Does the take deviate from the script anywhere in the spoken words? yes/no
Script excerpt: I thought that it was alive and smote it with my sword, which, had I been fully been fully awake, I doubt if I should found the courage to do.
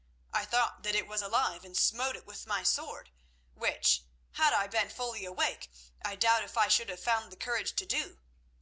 yes